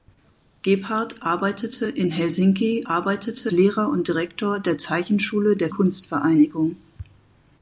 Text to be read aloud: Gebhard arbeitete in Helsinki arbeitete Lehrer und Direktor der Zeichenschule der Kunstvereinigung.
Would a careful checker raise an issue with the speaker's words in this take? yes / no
no